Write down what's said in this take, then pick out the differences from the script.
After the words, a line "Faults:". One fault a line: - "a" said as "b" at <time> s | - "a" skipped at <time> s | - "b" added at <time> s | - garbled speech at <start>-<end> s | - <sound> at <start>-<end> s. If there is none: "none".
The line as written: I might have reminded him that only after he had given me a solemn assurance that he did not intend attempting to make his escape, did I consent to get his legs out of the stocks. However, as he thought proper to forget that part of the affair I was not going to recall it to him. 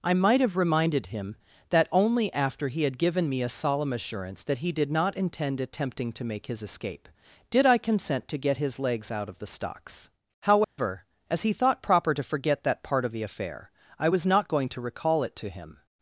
I might have reminded him that only after he had given me a solemn assurance that he did not intend attempting to make his escape, did I consent to get his legs out of the stocks. However, as he thought proper to forget that part of the affair I was not going to recall it to him.
Faults:
- dropout at 10.6-10.8 s